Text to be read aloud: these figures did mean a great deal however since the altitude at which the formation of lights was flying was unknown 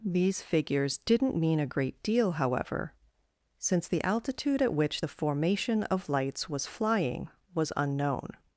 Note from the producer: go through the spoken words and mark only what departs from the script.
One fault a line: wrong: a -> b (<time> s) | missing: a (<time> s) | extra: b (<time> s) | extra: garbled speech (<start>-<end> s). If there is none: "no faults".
wrong: did -> didn't (1.0 s)